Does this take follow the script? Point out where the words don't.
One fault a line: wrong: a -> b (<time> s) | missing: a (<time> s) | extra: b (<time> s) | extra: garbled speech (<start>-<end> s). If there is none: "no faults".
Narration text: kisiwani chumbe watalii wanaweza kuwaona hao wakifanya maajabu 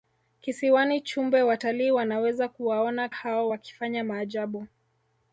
no faults